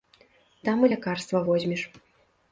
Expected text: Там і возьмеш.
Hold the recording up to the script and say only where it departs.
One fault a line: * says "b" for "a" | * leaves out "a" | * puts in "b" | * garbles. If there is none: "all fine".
* puts in "лякарства"